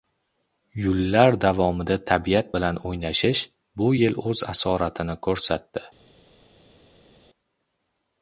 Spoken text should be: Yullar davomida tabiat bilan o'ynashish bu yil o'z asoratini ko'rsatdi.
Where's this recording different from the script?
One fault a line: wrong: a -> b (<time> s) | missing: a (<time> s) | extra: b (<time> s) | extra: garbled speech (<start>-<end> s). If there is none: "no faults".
no faults